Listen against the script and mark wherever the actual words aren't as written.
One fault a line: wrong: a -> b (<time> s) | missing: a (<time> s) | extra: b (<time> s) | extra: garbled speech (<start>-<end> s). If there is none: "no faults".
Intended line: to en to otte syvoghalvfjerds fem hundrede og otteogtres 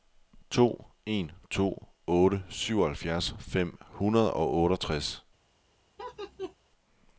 no faults